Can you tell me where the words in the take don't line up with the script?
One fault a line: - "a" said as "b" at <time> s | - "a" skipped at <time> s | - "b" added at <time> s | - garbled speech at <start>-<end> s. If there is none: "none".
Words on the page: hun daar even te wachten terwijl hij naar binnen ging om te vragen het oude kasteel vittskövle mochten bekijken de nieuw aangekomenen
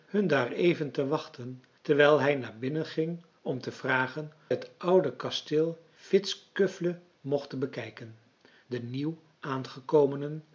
none